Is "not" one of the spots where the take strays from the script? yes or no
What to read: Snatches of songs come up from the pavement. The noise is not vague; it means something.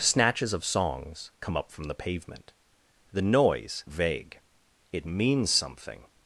yes